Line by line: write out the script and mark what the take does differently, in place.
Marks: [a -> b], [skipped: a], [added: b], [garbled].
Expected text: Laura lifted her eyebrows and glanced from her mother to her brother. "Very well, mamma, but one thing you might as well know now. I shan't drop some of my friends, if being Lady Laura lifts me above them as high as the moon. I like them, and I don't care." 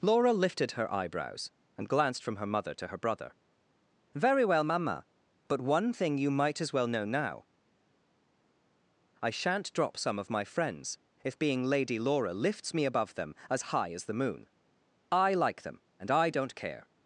Laura lifted her eyebrows and glanced from her mother to her brother. "Very well, mamma, but one thing you might as well know now. I shan't drop some of my friends, if being Lady Laura lifts me above them as high as the moon. I like them, and I don't care."